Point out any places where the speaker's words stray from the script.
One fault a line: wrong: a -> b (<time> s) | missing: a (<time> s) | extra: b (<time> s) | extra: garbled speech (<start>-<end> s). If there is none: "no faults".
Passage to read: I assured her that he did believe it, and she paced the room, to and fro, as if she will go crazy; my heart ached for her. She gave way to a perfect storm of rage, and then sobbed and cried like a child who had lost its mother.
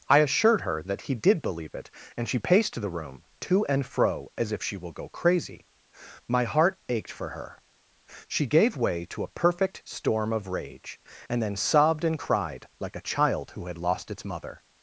no faults